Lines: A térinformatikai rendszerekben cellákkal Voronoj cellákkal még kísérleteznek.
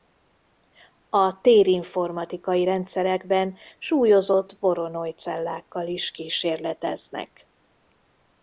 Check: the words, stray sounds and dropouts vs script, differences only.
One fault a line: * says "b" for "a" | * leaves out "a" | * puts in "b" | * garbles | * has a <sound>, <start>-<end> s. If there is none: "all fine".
* says "súlyozott" for "cellákkal"
* says "is" for "még"